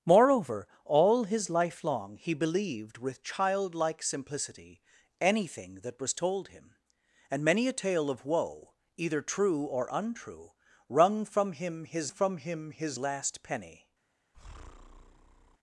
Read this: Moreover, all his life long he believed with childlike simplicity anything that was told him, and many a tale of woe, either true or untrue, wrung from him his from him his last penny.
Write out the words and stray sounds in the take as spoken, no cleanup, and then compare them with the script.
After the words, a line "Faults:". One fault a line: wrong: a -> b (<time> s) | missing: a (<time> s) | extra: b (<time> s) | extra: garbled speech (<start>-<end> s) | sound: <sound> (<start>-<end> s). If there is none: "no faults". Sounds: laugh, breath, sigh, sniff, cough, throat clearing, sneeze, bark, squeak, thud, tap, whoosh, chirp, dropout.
Moreover, all his life long he believed with childlike simplicity anything that was told him, and many a tale of woe, either true or untrue, wrung from him his from him his last penny.
Faults:
sound: breath (14.3-15.6 s)